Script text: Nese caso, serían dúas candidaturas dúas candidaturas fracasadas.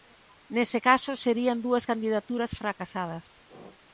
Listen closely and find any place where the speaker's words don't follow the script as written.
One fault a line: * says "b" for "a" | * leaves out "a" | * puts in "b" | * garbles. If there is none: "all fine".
* leaves out "dúas candidaturas"